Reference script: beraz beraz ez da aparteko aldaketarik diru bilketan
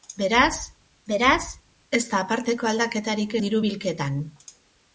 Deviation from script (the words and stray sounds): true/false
false